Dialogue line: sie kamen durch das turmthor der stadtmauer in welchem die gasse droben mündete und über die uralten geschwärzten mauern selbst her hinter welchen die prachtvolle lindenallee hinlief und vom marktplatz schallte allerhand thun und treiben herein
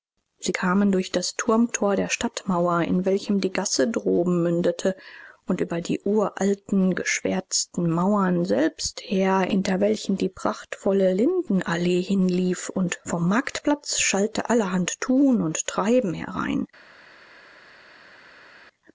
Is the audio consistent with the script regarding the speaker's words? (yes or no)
yes